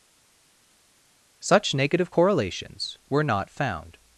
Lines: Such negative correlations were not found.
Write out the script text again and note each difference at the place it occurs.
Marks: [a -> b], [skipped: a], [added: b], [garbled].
Such negative correlations were not found.